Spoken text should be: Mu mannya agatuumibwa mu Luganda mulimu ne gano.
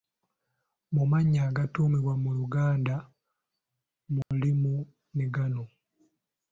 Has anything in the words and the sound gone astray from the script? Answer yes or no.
yes